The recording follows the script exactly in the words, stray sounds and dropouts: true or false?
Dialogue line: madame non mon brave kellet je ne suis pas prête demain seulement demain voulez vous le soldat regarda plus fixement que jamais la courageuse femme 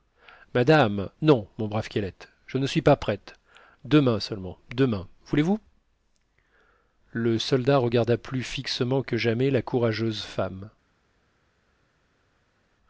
true